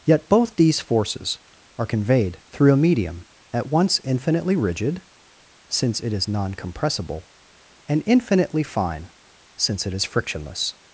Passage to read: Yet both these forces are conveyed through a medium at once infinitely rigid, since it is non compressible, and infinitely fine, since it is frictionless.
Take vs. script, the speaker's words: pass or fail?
pass